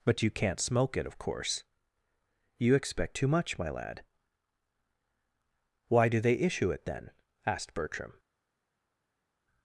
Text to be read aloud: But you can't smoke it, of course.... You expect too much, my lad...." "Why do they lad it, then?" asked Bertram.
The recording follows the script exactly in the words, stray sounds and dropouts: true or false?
false